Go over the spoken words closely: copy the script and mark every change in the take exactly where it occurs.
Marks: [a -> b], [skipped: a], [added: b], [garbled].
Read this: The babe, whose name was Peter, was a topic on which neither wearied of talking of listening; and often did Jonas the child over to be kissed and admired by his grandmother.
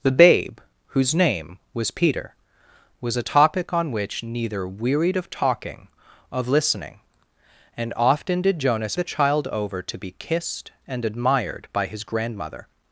The babe, whose name was Peter, was a topic on which neither wearied of talking of listening; and often did Jonas the child over to be kissed and admired by his grandmother.